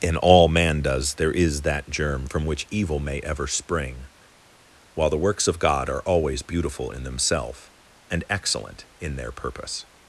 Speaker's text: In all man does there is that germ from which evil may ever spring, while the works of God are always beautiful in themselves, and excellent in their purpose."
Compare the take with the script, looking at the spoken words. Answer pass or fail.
pass